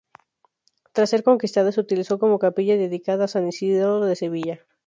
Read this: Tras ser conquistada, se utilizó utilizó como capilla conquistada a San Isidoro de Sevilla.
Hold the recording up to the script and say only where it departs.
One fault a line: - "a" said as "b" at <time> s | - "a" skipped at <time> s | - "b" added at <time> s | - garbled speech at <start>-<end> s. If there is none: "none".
- "utilizó" skipped at 2.2 s
- "conquistada" said as "dedicada" at 2.8 s